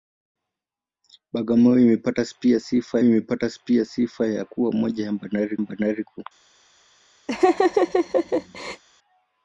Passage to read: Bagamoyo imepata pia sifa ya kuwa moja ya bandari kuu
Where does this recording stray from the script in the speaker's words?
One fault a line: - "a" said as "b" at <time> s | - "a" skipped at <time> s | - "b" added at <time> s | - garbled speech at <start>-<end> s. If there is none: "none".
- "imepata pia sifa" added at 3.0 s
- "bandari" added at 5.6 s